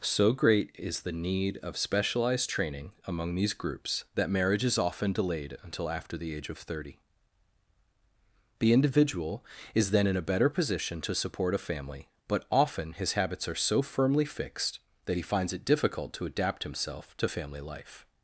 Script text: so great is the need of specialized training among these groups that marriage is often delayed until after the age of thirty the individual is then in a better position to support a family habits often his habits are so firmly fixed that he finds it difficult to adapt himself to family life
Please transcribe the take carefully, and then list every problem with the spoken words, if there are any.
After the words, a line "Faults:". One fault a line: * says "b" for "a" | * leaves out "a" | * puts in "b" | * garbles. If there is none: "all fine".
so great is the need of specialized training among these groups that marriage is often delayed until after the age of thirty the individual is then in a better position to support a family but often his habits are so firmly fixed that he finds it difficult to adapt himself to family life
Faults:
* says "but" for "habits"